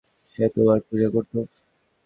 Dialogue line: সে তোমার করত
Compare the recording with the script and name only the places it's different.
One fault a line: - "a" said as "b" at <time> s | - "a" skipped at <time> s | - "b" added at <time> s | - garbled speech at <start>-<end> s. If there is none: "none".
- "পূজা" added at 0.9 s